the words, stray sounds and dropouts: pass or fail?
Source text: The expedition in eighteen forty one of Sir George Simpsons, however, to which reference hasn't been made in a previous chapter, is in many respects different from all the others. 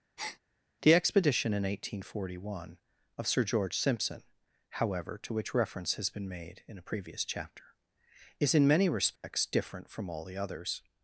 fail